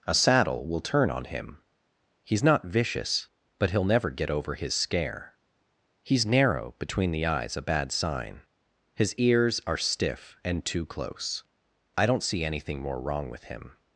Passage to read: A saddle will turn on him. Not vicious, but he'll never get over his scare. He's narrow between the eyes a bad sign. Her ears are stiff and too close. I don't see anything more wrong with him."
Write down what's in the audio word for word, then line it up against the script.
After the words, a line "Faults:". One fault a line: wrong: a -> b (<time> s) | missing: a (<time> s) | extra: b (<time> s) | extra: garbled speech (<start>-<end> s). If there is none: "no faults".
A saddle will turn on him. He's not vicious, but he'll never get over his scare. He's narrow between the eyes a bad sign. His ears are stiff and too close. I don't see anything more wrong with him."
Faults:
extra: He's (2.2 s)
wrong: Her -> His (8.9 s)